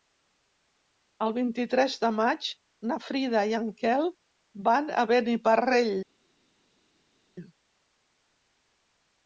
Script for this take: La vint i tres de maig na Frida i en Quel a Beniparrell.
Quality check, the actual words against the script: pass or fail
fail